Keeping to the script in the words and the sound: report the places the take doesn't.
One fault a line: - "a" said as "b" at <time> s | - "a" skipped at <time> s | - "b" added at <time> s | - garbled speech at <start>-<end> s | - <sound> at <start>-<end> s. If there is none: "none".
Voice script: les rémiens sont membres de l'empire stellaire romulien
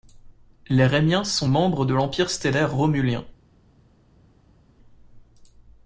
none